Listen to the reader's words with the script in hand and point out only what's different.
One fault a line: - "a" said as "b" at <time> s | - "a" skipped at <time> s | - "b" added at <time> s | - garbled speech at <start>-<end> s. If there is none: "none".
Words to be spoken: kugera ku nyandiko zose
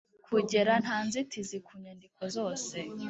- "nta nzitizi" added at 0.8 s